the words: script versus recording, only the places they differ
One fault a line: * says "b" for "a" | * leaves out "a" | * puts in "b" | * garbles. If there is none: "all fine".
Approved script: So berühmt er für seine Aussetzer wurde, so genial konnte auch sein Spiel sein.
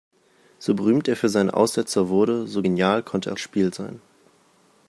* leaves out "sein"